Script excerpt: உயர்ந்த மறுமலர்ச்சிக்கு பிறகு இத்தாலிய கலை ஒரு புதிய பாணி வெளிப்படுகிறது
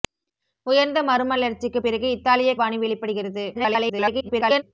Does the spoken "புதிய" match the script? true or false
false